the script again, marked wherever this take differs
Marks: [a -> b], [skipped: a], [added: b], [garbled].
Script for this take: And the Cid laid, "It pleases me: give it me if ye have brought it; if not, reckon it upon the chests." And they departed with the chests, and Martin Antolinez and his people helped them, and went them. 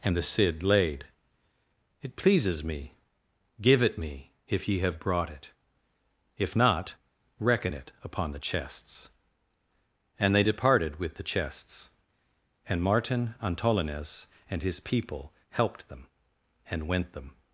And the Cid laid, "It pleases me: give it me if ye have brought it; if not, reckon it upon the chests." And they departed with the chests, and Martin Antolinez and his people helped them, and went them.